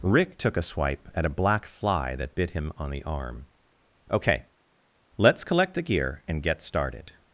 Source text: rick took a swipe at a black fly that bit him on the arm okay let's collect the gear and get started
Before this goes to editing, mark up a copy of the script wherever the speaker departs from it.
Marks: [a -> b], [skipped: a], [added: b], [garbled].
rick took a swipe at a black fly that bit him on the arm okay let's collect the gear and get started